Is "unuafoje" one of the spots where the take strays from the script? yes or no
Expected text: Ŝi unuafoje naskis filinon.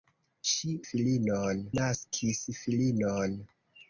yes